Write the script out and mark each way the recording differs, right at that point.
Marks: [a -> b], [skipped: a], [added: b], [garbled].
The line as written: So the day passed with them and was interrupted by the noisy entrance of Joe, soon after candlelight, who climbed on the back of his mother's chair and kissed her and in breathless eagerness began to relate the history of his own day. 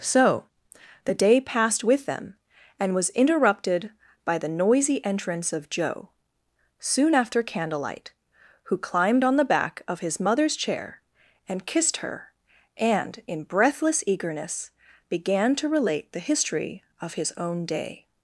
So the day passed with them and was interrupted by the noisy entrance of Joe, soon after candlelight, who climbed on the back of his mother's chair and kissed her and in breathless eagerness began to relate the history of his own day.